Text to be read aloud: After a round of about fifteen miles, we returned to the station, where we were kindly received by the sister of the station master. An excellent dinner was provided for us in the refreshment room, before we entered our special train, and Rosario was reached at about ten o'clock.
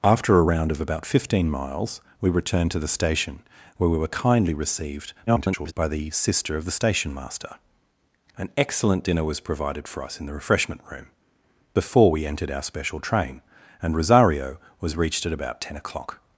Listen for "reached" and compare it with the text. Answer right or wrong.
right